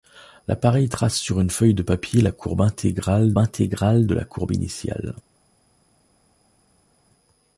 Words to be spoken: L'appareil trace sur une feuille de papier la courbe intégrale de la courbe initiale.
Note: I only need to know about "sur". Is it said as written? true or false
true